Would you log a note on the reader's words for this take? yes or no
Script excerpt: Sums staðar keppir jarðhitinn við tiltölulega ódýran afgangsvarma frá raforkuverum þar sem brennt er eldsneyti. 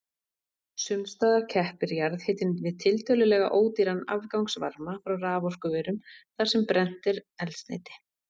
no